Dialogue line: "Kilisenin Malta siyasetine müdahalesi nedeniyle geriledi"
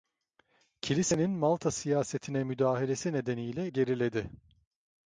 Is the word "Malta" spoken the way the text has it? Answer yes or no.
yes